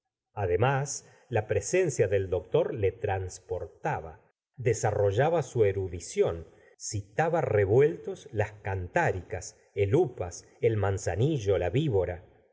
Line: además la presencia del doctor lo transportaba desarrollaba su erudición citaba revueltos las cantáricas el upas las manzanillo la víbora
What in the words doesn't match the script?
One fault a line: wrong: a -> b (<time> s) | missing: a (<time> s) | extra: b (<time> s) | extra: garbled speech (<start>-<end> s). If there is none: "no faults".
wrong: lo -> le (2.7 s)
wrong: las -> el (10.6 s)